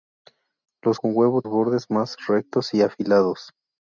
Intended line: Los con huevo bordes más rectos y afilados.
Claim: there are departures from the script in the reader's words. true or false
false